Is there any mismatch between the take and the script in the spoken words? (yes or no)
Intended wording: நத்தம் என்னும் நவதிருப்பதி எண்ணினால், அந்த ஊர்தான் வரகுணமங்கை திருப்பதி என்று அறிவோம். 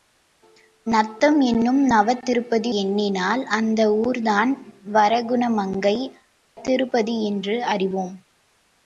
no